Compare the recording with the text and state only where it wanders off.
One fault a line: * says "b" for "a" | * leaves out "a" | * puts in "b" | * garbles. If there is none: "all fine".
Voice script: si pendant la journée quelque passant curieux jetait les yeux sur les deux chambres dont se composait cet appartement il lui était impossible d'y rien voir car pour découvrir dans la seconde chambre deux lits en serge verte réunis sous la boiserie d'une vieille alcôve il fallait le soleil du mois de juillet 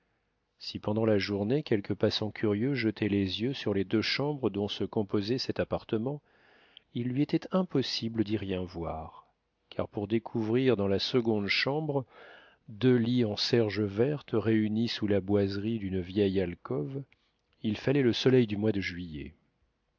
all fine